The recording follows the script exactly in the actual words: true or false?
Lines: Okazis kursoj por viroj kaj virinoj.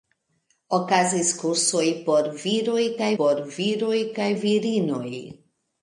false